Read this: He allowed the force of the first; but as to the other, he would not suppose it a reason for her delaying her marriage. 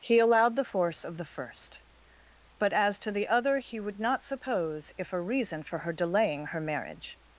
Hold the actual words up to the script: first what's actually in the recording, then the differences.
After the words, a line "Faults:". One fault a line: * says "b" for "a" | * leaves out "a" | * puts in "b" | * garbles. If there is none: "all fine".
He allowed the force of the first; but as to the other, he would not suppose if a reason for her delaying her marriage.
Faults:
* says "if" for "it"